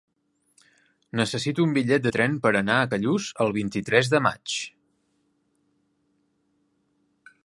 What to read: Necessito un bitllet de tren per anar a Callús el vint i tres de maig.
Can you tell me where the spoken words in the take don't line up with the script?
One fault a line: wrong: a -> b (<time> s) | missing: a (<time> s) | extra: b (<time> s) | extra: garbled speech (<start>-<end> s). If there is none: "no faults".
no faults